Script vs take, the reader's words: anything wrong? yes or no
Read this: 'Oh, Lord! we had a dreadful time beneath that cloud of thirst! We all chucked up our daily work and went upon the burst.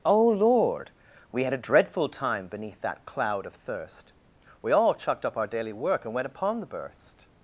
no